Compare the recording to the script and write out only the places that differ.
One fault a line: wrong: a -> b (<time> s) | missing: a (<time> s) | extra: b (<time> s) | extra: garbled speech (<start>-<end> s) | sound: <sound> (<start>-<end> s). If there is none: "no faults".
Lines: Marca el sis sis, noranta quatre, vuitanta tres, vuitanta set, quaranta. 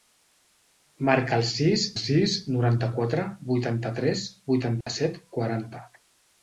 sound: dropout (4.8-4.9 s)